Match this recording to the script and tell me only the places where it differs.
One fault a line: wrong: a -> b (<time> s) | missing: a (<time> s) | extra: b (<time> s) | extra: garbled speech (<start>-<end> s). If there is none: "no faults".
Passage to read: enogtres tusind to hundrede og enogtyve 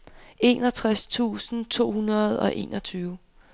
no faults